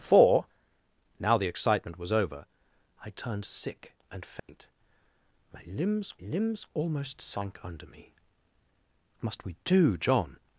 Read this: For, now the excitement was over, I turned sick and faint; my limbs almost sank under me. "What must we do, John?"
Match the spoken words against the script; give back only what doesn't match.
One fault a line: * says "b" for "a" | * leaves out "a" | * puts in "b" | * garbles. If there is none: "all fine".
* puts in "limbs"
* leaves out "What"